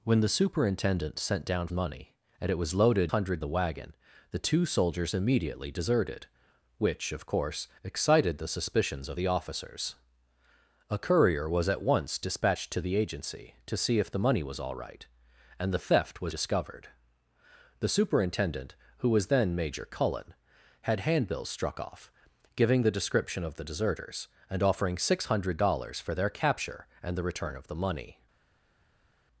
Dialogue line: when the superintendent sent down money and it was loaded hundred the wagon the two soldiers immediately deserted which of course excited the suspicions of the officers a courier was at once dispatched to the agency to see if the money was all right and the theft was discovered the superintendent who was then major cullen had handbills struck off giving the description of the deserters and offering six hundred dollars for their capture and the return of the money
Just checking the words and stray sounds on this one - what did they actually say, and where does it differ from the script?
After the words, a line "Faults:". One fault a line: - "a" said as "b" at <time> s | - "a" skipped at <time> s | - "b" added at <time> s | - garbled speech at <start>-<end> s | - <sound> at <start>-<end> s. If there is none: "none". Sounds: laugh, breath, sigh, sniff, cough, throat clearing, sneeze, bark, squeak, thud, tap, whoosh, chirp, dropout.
when the superintendent sent down money and it was loaded hundred the wagon the two soldiers immediately deserted which of course excited the suspicions of the officers a courier was at once dispatched to the agency to see if the money was all right and the theft was discovered the superintendent who was then major cullen had handbills struck off giving the description of the deserters and offering six hundred dollars for their capture and the return of the money
Faults:
none